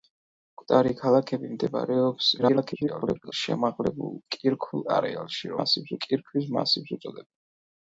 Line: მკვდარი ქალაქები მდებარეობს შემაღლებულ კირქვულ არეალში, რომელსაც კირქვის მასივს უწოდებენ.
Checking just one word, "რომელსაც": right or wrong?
wrong